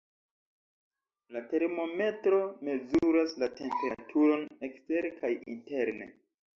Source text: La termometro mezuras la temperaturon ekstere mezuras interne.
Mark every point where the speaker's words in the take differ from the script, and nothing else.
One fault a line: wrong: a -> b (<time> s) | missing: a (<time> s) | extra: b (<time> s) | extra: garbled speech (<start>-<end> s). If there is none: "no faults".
wrong: mezuras -> kaj (5.2 s)